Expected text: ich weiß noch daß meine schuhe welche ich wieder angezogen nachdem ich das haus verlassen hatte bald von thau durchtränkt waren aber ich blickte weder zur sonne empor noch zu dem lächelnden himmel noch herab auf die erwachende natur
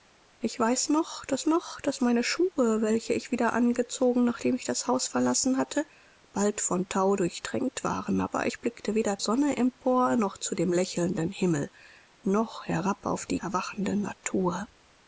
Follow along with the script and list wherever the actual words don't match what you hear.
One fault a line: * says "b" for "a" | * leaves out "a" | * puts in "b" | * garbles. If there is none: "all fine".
* puts in "noch daß"
* leaves out "zur"